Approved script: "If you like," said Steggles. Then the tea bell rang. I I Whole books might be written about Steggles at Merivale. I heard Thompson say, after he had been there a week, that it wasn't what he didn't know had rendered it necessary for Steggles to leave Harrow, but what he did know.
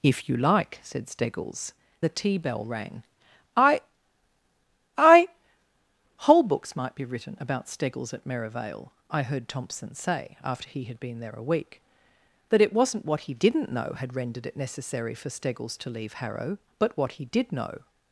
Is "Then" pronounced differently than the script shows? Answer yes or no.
yes